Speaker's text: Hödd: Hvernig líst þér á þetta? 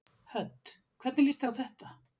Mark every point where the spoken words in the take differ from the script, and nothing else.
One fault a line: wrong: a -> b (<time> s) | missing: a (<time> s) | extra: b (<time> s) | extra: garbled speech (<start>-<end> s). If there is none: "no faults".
no faults